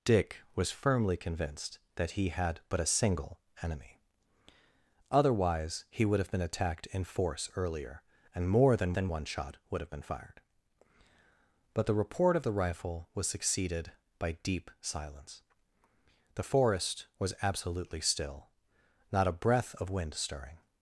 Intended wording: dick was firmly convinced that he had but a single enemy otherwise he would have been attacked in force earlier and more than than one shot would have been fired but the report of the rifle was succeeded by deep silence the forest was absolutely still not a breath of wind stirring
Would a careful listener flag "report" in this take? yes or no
no